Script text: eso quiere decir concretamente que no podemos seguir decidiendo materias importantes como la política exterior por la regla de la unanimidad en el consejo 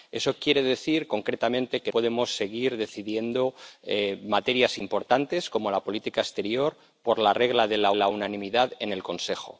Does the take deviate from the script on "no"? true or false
true